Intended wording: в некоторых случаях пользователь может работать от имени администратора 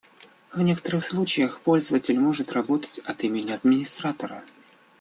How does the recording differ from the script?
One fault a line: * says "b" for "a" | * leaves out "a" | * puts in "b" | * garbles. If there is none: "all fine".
all fine